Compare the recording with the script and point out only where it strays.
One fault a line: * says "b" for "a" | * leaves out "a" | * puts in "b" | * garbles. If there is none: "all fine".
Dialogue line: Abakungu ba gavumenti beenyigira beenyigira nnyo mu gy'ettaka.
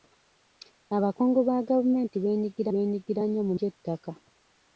all fine